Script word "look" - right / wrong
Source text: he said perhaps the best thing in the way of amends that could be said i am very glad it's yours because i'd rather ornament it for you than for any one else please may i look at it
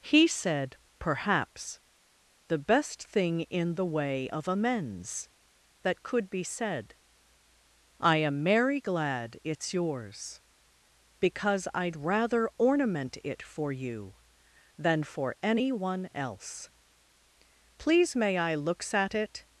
wrong